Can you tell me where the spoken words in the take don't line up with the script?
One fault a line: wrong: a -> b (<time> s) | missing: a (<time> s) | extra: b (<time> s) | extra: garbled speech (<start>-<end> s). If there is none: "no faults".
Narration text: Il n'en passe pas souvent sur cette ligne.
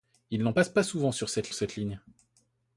extra: cette (1.5 s)